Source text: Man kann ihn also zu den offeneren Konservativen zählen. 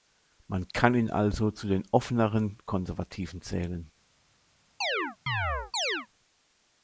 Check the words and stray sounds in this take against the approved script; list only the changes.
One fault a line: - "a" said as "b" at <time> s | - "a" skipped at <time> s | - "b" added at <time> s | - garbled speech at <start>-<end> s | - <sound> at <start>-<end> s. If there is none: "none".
- chirp at 4.8-6.1 s